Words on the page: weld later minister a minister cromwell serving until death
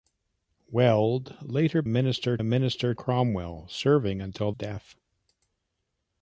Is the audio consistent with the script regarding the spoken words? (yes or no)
yes